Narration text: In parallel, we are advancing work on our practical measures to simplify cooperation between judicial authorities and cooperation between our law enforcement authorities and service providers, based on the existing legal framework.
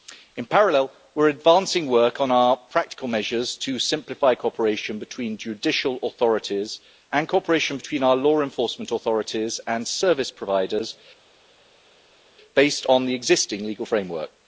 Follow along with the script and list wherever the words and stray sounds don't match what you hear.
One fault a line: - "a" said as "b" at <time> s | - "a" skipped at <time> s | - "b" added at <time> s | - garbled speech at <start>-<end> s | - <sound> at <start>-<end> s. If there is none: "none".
none